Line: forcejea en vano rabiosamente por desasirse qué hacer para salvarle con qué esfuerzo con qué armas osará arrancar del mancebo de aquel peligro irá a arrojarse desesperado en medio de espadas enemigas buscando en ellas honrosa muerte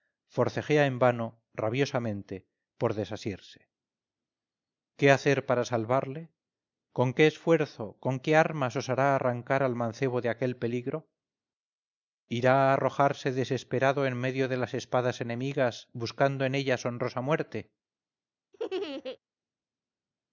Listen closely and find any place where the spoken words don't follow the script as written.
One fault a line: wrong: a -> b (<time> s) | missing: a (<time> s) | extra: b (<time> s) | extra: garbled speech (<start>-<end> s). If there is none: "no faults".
wrong: del -> al (9.6 s)
extra: las (14.6 s)